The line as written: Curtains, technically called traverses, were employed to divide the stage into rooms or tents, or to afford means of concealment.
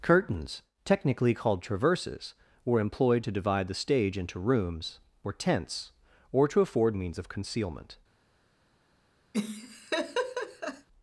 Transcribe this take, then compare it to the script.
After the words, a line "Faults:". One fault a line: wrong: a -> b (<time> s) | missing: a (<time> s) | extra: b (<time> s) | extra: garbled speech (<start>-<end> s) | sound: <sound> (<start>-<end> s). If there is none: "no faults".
Curtains, technically called traverses, were employed to divide the stage into rooms or tents, or to afford means of concealment.
Faults:
sound: laugh (9.3-10.9 s)